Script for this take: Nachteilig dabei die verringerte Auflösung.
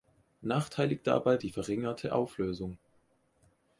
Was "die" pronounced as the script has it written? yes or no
yes